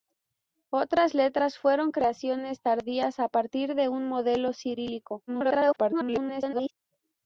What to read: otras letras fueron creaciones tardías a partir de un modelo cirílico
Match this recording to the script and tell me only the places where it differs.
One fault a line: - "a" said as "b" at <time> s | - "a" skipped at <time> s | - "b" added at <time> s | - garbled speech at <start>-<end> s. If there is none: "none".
- garbled speech at 5.3-6.7 s